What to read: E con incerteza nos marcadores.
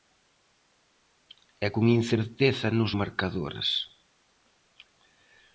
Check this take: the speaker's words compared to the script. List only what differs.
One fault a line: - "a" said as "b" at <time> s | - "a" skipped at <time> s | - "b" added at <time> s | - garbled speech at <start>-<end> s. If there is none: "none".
none